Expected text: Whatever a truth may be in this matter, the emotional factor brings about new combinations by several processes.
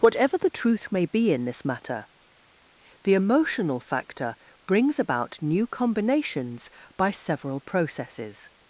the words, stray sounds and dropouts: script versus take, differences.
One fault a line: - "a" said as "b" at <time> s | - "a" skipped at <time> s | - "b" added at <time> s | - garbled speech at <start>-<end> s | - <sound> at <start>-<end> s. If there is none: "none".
- "a" said as "the" at 0.3 s